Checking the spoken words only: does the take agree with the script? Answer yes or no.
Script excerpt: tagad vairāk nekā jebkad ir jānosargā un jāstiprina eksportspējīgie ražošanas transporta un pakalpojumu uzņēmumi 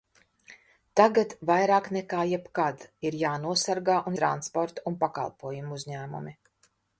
no